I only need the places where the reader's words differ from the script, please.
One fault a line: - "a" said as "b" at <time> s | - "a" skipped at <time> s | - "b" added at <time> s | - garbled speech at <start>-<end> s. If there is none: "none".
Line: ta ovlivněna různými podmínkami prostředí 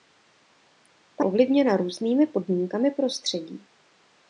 none